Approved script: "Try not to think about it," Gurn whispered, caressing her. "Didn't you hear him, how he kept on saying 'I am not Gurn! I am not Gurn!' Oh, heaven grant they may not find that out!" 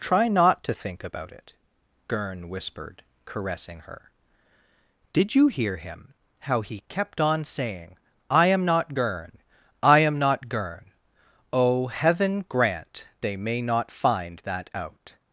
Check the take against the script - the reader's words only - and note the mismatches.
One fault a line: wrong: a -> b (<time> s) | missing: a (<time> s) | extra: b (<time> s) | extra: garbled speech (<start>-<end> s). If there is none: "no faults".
wrong: Didn't -> Did (5.1 s)